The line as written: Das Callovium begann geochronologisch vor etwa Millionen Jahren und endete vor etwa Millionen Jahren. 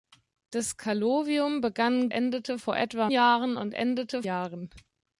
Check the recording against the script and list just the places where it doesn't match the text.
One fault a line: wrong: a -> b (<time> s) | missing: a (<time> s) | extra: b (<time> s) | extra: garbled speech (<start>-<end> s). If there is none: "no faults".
wrong: geochronologisch -> endete (2.1 s)
missing: Millionen (3.1 s)
missing: vor etwa Millionen (4.2 s)